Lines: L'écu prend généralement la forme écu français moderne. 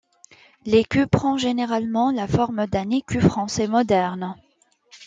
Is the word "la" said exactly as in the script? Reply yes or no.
yes